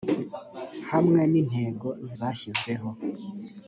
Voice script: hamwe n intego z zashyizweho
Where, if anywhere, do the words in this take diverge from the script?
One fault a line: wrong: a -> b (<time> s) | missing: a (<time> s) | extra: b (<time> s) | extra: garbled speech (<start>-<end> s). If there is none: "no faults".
no faults